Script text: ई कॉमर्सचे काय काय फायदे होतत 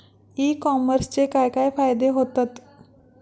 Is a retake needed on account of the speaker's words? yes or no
no